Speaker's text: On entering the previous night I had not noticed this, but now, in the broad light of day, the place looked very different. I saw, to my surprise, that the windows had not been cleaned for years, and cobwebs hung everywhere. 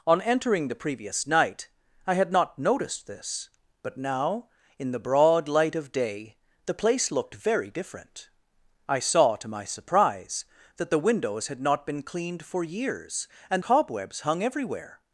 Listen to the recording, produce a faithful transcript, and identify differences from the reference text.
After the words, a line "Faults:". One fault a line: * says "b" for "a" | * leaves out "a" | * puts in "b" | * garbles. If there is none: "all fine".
On entering the previous night I had not noticed this, but now, in the broad light of day, the place looked very different. I saw, to my surprise, that the windows had not been cleaned for years, and cobwebs hung everywhere.
Faults:
all fine